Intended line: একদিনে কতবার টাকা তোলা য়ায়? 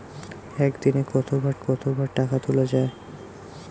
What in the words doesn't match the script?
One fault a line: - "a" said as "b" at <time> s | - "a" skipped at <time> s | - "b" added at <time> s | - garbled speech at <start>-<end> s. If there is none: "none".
- "কতবার" added at 1.6 s